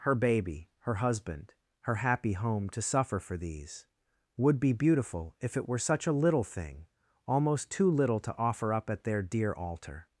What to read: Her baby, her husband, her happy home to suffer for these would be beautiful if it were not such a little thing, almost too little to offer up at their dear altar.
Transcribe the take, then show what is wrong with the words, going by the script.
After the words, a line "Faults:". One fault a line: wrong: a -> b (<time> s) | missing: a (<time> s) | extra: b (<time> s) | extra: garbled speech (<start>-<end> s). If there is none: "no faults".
Her baby, her husband, her happy home to suffer for these would be beautiful if it were such a little thing, almost too little to offer up at their dear altar.
Faults:
missing: not (5.8 s)